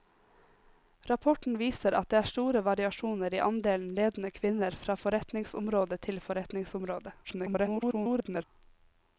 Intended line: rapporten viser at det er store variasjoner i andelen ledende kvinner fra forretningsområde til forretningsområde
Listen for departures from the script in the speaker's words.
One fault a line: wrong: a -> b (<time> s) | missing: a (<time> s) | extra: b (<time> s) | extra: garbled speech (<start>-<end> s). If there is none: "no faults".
extra: garbled speech (7.2-8.4 s)